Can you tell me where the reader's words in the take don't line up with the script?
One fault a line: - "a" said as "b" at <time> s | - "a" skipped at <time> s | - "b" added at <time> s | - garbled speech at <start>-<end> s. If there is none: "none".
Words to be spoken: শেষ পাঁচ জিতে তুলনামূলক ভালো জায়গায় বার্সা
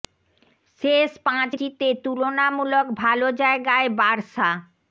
none